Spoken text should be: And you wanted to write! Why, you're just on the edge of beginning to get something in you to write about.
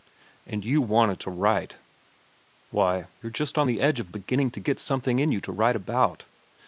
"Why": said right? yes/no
yes